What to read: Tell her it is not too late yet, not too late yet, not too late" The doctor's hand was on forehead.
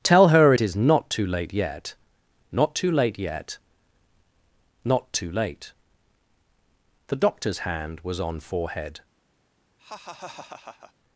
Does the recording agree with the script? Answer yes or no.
yes